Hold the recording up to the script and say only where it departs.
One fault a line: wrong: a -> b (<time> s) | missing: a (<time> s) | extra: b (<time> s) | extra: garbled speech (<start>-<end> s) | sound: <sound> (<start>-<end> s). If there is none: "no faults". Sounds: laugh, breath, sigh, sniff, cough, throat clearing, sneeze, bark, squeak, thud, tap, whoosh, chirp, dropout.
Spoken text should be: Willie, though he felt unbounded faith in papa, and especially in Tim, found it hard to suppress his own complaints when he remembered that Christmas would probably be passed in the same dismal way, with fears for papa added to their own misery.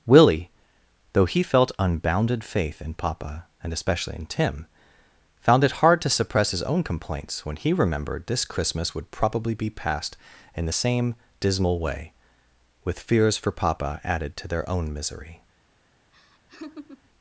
wrong: that -> this (8.3 s)
sound: laugh (16.1-17.1 s)